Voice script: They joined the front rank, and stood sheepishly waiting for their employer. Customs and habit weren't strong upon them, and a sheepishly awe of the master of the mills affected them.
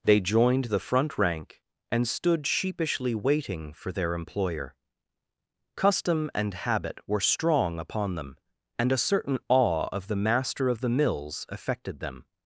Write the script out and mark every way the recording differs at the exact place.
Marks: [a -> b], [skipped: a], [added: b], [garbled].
They joined the front rank, and stood sheepishly waiting for their employer. [Customs -> Custom] and habit [weren't -> were] strong upon them, and a [sheepishly -> certain] awe of the master of the mills affected them.